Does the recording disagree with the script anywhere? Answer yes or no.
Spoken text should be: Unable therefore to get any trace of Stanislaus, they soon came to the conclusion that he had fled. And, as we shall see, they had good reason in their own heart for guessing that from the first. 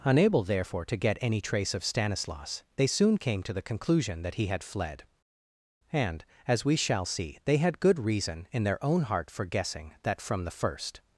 no